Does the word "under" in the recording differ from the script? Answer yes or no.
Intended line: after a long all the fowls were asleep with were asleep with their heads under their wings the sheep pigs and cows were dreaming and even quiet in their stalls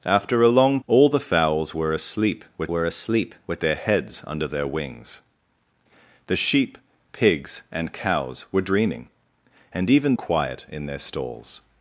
no